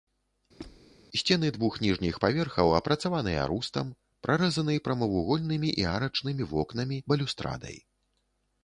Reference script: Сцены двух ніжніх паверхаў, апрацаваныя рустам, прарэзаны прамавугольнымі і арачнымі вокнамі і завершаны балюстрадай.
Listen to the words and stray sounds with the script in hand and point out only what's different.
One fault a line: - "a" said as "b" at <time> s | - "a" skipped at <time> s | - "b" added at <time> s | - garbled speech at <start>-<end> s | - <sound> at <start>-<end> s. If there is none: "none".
- squeak at 0.6-0.8 s
- "і завершаны" skipped at 7.0 s